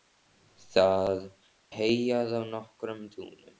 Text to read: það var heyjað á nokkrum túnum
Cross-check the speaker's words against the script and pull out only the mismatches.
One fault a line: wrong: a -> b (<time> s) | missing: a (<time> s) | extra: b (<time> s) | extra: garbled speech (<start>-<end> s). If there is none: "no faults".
missing: var (1.2 s)